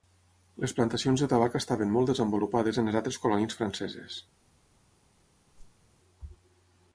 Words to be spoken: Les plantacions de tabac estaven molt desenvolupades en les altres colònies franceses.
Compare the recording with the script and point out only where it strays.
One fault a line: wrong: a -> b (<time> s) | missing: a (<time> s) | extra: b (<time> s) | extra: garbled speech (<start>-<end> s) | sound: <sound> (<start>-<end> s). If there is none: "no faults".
sound: whoosh (5.5-5.9 s)